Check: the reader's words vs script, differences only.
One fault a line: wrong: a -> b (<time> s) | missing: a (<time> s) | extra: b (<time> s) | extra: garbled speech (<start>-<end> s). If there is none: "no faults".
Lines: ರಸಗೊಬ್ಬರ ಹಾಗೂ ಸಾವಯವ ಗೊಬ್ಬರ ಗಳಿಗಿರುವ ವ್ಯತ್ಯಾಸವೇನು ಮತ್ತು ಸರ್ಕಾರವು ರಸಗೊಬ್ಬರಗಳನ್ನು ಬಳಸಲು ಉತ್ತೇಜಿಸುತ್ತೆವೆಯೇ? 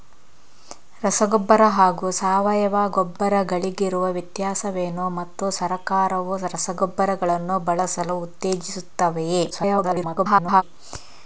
extra: garbled speech (9.5-10.6 s)